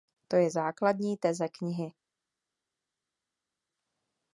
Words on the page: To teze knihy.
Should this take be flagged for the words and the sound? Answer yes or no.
yes